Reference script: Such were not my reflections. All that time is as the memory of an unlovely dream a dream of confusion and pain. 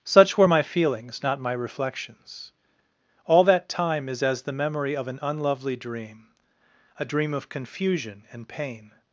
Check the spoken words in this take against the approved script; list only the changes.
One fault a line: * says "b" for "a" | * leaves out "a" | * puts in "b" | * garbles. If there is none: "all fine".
* puts in "my feelings"